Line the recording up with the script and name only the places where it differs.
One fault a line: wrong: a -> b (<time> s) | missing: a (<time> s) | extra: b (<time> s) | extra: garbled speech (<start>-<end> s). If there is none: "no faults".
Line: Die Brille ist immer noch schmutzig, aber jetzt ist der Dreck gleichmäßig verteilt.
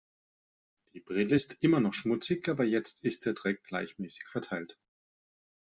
no faults